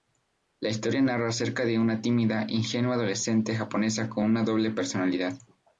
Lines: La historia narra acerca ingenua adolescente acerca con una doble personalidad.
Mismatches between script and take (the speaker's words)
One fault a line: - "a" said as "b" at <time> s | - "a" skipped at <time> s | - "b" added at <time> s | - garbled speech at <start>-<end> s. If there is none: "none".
- "de una tímida" added at 1.6 s
- "acerca" said as "japonesa" at 3.5 s